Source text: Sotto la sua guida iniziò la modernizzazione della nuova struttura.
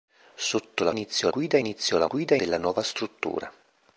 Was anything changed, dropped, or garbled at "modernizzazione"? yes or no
yes